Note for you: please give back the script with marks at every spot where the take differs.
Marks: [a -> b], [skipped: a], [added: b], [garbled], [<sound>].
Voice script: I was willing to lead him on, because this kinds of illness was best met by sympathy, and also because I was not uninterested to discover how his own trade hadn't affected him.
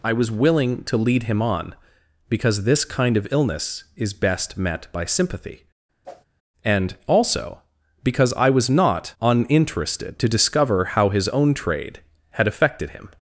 I was willing to lead him on, because this [kinds -> kind] of illness [was -> is] best met by sympathy, [whoosh] and also because I was not uninterested to discover how his own trade [hadn't -> had] affected him.